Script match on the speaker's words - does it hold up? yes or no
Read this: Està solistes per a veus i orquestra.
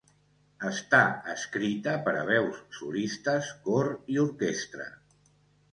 no